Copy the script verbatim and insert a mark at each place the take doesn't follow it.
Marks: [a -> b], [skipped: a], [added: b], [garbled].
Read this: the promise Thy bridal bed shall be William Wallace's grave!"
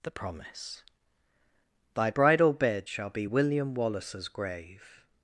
the promise Thy bridal bed shall be William Wallace's grave!"